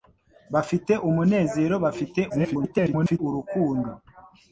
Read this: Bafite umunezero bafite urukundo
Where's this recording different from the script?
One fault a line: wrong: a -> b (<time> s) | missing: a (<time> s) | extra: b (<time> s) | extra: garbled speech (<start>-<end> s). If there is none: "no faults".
extra: garbled speech (2.3-3.2 s)